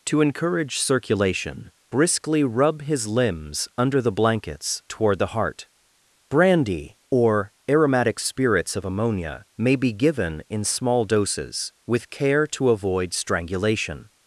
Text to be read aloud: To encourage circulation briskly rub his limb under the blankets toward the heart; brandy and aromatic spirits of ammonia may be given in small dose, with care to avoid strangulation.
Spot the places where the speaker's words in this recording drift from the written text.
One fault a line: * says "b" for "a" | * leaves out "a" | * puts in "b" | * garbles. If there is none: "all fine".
* says "limbs" for "limb"
* says "or" for "and"
* says "doses" for "dose"